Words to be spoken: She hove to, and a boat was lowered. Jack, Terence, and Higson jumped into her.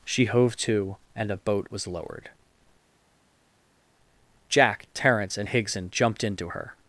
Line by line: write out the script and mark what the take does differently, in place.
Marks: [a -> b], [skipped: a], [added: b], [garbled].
She hove to, and a boat was lowered. Jack, Terence, and Higson jumped into her.